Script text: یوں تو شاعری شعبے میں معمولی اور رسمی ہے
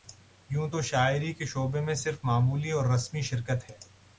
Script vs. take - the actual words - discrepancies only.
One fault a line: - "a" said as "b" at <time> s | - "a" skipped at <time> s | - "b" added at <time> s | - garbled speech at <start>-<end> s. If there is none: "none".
- "کے" added at 1.3 s
- "صرف" added at 1.9 s
- "شرکت" added at 3.3 s